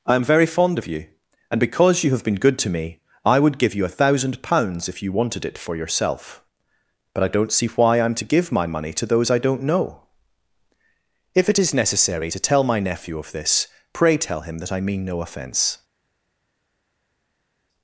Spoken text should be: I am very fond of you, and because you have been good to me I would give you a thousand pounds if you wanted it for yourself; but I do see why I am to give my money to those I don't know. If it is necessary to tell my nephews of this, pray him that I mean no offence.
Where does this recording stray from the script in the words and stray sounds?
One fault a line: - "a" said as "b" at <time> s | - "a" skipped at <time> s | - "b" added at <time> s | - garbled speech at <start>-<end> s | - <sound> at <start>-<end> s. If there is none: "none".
- "do" said as "don't" at 7.3 s
- "nephews" said as "nephew" at 12.8 s
- "tell" added at 14.2 s